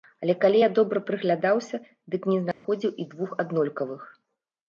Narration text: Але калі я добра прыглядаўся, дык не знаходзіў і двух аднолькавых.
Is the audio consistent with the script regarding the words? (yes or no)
yes